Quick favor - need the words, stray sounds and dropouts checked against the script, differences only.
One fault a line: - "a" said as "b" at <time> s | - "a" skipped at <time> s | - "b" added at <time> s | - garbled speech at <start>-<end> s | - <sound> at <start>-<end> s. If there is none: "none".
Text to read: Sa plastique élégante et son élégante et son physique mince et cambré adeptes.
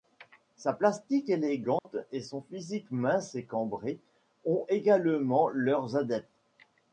- dropout at 1.8-1.8 s
- "élégante et son" skipped at 2.4 s
- "ont également leurs" added at 4.4 s